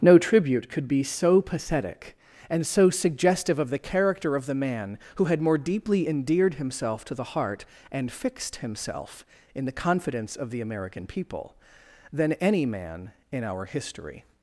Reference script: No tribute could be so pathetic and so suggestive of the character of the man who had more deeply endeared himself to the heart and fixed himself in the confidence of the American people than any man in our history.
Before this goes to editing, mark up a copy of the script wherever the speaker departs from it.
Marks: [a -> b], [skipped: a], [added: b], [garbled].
No tribute could be so pathetic and so suggestive of the character of the man who had more deeply endeared himself to the heart and fixed himself in the confidence of the American people than any man in our history.